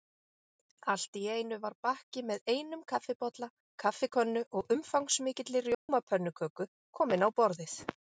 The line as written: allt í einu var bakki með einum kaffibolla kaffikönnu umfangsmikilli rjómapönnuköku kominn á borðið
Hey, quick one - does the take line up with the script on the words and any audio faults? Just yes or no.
no